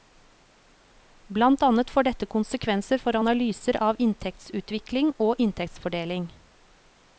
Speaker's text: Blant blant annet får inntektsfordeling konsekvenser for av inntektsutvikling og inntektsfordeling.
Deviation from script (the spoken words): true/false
true